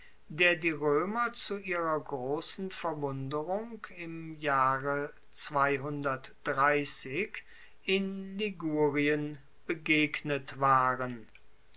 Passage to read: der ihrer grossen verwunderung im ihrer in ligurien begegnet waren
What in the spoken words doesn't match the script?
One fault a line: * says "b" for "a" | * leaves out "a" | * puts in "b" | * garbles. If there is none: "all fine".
* puts in "die roemer zu"
* says "jahre" for "ihrer"